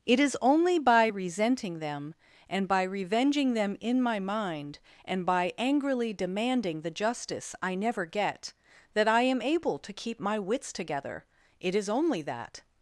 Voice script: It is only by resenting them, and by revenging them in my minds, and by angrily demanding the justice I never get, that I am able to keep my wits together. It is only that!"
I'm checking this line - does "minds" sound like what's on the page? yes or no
no